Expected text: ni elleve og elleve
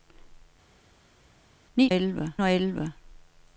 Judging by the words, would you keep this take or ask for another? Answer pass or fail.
pass